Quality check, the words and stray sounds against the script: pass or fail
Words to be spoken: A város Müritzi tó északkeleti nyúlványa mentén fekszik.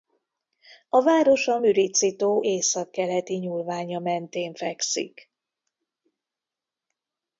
fail